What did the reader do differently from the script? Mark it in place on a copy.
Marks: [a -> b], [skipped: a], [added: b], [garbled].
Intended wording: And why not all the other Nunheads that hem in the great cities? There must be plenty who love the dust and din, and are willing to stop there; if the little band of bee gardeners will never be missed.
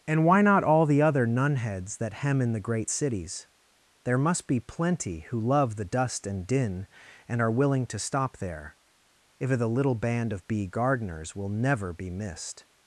And why not all the other Nunheads that hem in the great cities? There must be plenty who love the dust and din, and are willing to stop there; if the little band of bee gardeners will never be missed.